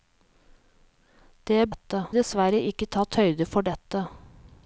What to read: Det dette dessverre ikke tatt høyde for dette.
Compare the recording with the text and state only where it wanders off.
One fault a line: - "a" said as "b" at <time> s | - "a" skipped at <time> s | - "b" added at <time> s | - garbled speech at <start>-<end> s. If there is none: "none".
none